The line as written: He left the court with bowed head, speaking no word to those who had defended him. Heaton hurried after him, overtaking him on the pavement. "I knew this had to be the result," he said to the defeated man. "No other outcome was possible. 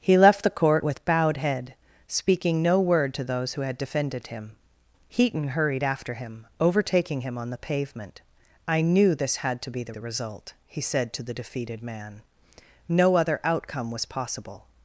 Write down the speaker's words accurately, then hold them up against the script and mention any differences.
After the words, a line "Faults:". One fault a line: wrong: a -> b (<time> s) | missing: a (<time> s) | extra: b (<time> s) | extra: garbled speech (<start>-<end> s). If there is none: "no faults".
He left the court with bowed head, speaking no word to those who had defended him. Heaton hurried after him, overtaking him on the pavement. "I knew this had to be the the result," he said to the defeated man. "No other outcome was possible.
Faults:
extra: the (9.9 s)